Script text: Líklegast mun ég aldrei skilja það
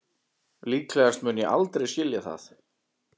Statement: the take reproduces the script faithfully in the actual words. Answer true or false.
true